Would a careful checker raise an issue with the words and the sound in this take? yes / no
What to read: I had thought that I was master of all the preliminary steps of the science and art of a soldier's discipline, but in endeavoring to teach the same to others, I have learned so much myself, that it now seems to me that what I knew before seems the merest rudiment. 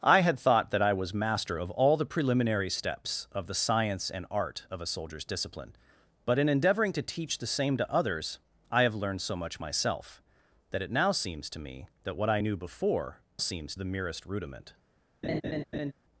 yes